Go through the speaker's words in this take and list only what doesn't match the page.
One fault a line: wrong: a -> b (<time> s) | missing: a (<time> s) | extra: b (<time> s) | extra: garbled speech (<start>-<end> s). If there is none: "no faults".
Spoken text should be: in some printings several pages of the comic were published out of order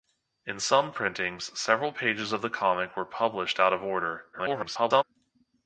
extra: garbled speech (4.3-5.0 s)